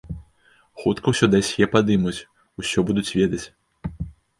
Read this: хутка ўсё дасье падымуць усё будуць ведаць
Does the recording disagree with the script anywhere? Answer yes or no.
no